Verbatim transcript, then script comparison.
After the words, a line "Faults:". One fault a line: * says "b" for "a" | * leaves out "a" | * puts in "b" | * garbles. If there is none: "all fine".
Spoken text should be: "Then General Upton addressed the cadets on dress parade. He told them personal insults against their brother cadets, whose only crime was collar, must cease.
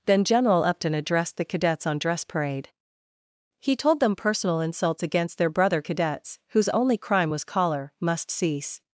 "Then General Upton addressed the cadets on dress parade. He told them personal insults against their brother cadets, whose only crime was collar, must cease.
Faults:
all fine